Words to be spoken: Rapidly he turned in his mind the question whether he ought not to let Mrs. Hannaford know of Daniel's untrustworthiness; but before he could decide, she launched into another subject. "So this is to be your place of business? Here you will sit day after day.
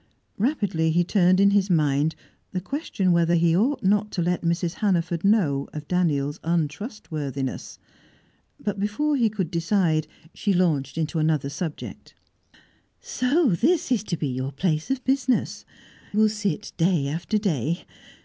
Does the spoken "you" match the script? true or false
false